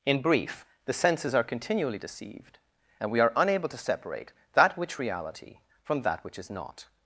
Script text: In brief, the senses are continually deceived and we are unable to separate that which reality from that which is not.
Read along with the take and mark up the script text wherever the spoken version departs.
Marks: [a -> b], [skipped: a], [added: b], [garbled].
In brief, the senses are continually deceived and we are unable to separate that which reality from that which is not.